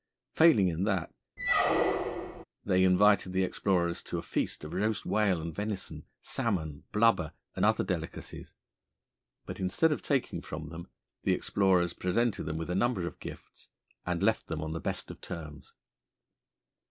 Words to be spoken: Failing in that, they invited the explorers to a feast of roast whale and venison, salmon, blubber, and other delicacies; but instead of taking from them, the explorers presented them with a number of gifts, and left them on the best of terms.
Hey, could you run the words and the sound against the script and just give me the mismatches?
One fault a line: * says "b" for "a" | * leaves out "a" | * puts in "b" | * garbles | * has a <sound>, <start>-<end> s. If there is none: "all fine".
* has a squeak, 1.4-2.4 s